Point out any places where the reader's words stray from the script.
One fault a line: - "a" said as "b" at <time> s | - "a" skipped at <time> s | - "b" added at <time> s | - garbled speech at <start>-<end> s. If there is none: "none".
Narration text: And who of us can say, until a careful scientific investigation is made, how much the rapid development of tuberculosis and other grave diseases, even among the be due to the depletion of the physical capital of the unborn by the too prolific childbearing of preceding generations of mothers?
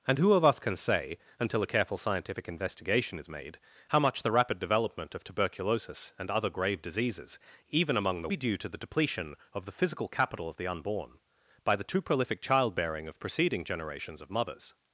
none